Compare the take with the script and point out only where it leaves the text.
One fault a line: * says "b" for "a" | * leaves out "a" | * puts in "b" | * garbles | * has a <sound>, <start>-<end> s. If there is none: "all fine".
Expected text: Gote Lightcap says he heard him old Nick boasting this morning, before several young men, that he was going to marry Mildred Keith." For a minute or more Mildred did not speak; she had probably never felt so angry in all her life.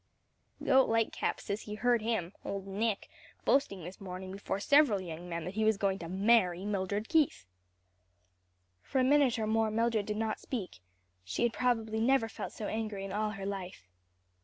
all fine